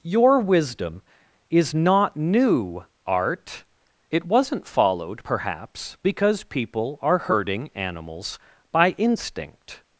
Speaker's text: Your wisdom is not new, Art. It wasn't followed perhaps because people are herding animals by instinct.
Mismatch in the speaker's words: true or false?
false